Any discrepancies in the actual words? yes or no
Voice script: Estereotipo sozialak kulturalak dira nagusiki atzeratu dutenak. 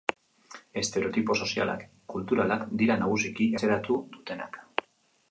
no